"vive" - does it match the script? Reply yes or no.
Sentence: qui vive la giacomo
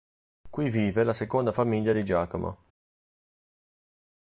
yes